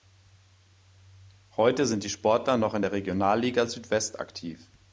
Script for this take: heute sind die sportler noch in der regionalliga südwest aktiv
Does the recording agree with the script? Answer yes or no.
yes